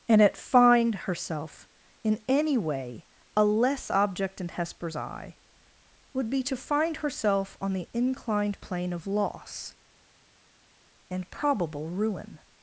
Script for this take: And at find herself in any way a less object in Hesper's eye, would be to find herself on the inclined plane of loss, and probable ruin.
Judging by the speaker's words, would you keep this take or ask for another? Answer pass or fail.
pass